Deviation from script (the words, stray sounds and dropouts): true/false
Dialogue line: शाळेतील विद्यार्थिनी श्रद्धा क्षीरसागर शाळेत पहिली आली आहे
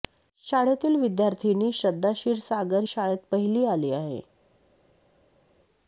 false